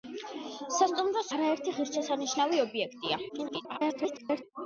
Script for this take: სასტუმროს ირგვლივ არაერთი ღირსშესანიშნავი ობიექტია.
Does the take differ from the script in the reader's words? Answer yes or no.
yes